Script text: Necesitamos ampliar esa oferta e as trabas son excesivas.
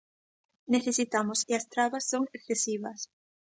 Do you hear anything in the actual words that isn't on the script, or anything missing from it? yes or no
yes